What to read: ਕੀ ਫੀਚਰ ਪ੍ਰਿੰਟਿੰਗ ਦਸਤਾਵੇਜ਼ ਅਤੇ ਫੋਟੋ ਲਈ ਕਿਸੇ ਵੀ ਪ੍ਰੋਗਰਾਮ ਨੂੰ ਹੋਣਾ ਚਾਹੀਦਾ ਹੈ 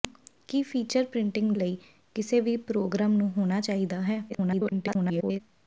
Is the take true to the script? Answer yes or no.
no